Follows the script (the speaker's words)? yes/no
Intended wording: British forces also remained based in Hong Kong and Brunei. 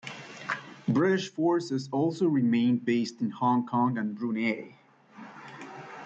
yes